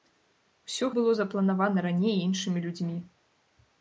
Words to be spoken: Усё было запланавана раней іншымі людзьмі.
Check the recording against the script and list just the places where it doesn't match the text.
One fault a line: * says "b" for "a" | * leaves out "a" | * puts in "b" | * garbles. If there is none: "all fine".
all fine